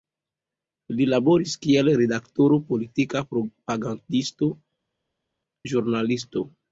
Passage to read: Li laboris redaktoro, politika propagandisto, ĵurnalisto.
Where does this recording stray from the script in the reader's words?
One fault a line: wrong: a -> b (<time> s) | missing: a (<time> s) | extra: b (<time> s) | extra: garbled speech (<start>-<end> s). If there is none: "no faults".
extra: kiel (1.6 s)